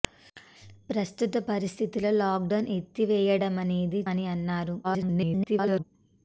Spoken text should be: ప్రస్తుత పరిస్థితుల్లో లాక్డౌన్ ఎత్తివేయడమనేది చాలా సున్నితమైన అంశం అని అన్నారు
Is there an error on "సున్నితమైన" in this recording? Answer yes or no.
yes